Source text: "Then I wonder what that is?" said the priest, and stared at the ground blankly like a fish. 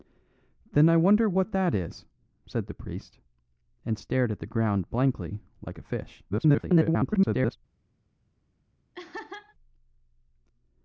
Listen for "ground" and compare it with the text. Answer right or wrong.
right